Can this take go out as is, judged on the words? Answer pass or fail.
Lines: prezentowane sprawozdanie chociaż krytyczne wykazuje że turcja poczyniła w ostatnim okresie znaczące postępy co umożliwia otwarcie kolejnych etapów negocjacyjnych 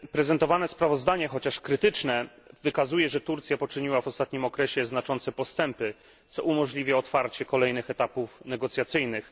pass